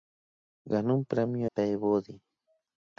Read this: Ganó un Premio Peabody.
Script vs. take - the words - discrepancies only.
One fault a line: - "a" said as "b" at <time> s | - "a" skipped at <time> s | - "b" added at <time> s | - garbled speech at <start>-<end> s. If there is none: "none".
none